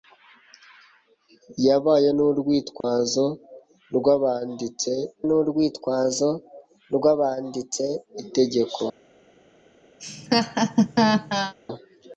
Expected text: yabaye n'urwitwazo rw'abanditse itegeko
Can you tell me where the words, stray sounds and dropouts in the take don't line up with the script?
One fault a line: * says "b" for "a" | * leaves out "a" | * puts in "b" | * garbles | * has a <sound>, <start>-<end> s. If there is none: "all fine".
* has a dropout, 2.8-2.8 s
* puts in "n'urwitwazo rw'abanditse"
* has a laugh, 10.0-11.5 s